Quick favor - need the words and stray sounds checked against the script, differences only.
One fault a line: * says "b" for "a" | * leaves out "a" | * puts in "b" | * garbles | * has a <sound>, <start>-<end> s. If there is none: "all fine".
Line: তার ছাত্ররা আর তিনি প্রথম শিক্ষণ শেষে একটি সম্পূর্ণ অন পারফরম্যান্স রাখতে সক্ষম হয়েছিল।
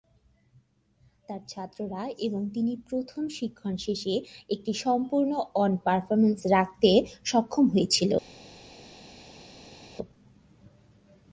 * says "এবং" for "আর"